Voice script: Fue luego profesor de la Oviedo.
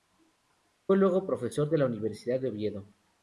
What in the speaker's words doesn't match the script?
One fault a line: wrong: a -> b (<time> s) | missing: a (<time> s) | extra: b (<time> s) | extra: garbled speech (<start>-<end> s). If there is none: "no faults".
extra: Universidad de (1.9 s)